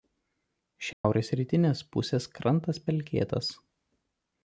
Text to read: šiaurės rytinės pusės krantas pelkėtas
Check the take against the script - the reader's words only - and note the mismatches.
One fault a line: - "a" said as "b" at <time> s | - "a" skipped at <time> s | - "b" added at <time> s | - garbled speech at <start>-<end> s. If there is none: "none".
none